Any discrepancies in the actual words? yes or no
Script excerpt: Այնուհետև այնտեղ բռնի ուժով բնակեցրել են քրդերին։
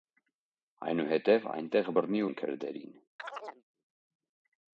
yes